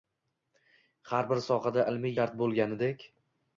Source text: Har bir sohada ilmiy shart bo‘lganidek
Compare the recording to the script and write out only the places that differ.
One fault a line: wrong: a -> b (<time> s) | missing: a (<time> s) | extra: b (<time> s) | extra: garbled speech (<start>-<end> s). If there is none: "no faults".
no faults